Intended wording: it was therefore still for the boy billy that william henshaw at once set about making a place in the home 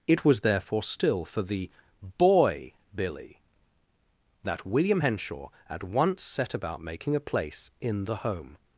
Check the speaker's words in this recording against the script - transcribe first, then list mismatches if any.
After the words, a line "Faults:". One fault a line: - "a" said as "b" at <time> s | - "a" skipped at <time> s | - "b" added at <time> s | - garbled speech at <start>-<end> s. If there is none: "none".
it was therefore still for the boy billy that william henshaw at once set about making a place in the home
Faults:
none